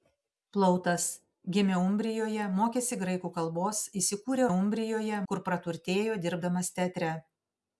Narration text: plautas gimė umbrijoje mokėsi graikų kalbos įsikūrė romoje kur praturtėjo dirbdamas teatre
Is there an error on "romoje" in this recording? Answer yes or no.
yes